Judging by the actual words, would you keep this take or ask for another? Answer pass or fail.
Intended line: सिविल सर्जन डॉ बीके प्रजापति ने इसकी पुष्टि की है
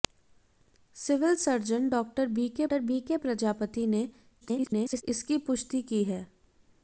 fail